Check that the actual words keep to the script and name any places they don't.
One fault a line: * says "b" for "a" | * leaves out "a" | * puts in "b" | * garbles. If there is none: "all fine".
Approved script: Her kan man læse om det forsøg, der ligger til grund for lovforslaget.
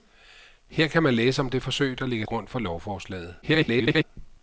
* leaves out "til"
* garbles